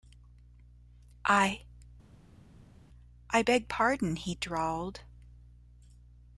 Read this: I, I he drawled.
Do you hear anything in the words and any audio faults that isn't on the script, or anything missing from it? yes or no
yes